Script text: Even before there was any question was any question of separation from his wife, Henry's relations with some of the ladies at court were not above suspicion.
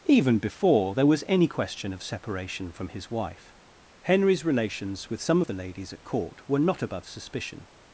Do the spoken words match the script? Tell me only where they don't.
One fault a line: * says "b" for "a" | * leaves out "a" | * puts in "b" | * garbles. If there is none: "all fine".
* leaves out "was any question"